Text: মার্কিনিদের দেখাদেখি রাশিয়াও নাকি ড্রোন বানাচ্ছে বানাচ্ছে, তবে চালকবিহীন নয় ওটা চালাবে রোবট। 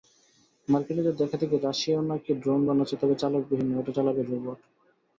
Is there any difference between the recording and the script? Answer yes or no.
yes